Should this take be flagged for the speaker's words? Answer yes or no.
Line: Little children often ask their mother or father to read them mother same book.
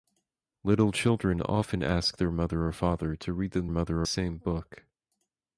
no